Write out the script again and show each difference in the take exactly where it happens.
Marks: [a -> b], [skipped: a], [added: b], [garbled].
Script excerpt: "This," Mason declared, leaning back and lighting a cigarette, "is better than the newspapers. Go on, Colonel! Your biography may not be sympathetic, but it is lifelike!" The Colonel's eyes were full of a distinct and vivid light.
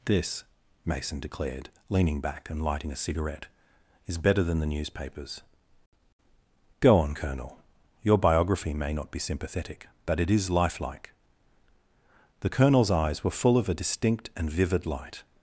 "This," Mason declared, leaning back and lighting a cigarette, "is better than the newspapers. Go on, Colonel! Your biography may not be sympathetic, but it is lifelike!" The Colonel's eyes were full of a distinct and vivid light.